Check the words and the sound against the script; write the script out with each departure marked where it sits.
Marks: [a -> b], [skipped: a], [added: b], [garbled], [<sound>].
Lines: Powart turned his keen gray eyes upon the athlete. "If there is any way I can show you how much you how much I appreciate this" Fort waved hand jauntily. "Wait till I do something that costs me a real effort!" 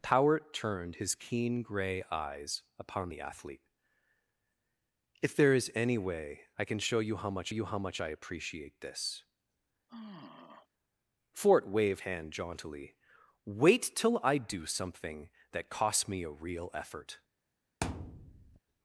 Powart turned his keen gray eyes upon the athlete. "If there is any way I can show you how much you how much I appreciate this" [sigh] Fort waved hand jauntily. "Wait till I do something that costs me a real effort!" [thud]